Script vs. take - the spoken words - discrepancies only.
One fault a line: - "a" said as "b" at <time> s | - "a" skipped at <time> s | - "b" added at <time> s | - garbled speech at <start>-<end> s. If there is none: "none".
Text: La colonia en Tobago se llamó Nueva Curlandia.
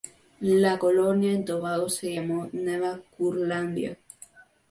none